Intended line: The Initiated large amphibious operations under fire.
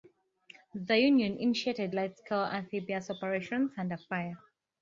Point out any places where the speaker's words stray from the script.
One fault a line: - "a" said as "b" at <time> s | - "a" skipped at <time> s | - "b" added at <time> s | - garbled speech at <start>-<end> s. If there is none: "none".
- "Union" added at 1.0 s
- "scale" added at 2.1 s